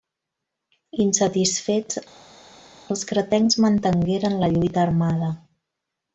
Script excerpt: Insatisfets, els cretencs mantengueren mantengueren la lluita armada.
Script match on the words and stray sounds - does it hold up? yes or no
no